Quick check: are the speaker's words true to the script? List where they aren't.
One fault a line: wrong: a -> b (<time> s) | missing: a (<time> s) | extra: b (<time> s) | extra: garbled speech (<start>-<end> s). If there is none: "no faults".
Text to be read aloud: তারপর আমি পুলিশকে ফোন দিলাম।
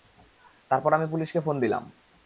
no faults